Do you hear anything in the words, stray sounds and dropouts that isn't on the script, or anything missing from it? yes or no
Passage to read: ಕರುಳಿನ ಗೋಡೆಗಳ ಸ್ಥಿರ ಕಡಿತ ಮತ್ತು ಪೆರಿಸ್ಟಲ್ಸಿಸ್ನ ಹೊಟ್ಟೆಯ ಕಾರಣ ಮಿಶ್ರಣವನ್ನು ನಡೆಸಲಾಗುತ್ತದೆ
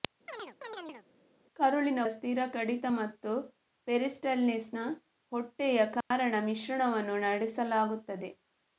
yes